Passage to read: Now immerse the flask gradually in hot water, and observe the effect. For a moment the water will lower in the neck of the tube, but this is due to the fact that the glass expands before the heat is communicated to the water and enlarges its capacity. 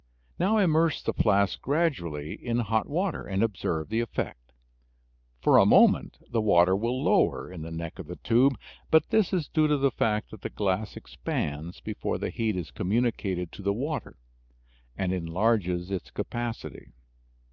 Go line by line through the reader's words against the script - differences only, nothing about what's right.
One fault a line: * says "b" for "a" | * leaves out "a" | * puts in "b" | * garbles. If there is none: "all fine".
all fine